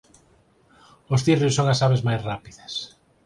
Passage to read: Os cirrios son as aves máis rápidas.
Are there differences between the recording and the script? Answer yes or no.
no